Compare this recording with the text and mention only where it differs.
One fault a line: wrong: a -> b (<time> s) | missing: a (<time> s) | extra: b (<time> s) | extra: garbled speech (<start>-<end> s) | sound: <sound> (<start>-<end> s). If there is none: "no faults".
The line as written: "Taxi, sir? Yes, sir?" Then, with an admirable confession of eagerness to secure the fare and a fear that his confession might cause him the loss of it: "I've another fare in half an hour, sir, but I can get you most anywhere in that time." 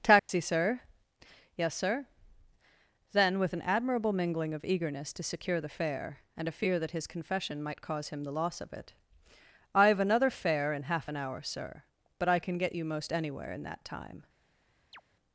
sound: dropout (0.2-0.3 s)
wrong: confession -> mingling (4.1 s)
sound: chirp (14.9-15.0 s)